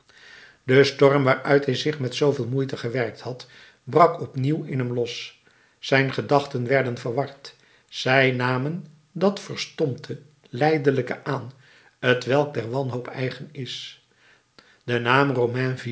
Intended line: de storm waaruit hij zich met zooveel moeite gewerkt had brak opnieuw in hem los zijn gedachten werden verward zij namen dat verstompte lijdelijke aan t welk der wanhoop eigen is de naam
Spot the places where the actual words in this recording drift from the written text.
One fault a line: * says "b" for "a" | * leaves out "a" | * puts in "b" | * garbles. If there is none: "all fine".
all fine